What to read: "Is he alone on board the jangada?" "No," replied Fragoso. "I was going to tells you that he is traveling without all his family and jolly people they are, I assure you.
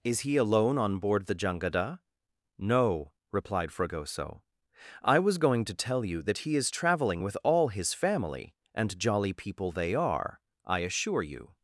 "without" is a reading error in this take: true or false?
true